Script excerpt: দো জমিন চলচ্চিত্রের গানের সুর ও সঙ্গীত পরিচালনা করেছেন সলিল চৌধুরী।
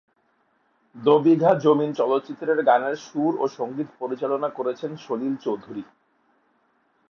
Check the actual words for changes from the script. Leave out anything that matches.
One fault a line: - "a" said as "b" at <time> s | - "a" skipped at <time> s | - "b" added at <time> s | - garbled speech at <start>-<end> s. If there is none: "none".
- "বিঘা" added at 1.2 s